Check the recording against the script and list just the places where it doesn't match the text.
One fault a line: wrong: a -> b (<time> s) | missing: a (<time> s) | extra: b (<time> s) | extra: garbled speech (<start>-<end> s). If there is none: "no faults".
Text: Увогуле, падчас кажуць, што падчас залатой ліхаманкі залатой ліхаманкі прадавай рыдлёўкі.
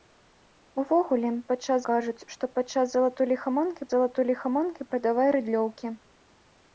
no faults